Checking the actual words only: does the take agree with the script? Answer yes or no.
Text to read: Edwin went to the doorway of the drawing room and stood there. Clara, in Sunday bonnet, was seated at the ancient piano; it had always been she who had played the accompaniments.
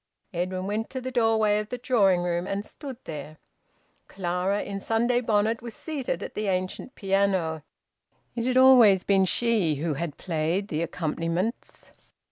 yes